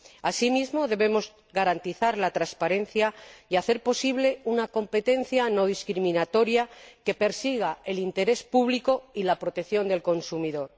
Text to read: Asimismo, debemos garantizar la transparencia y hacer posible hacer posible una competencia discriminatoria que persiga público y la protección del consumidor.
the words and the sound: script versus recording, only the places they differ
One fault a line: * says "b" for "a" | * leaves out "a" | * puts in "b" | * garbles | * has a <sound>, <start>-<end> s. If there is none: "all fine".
* leaves out "hacer posible"
* puts in "no"
* puts in "el interés"